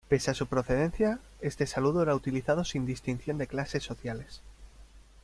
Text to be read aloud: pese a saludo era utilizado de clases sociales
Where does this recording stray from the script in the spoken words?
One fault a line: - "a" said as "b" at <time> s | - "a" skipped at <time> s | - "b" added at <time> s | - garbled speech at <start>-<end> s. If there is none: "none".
- "su procedencia este" added at 0.3 s
- "sin distinción" added at 2.6 s